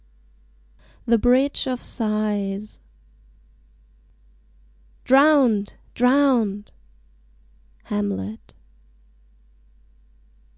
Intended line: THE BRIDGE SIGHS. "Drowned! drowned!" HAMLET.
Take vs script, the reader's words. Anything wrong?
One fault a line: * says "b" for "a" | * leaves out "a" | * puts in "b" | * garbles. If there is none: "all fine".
* puts in "OF"